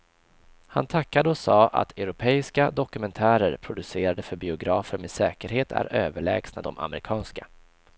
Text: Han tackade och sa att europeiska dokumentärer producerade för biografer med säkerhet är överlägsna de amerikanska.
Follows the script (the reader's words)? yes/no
yes